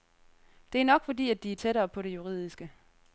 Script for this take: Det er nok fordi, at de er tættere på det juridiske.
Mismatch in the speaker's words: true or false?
false